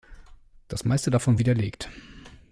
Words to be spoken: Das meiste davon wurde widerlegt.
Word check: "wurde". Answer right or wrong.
wrong